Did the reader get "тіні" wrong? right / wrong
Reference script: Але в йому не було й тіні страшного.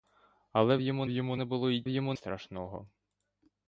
wrong